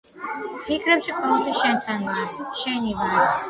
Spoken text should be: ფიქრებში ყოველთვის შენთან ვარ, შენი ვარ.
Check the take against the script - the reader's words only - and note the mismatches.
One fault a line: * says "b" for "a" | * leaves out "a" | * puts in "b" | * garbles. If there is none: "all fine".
all fine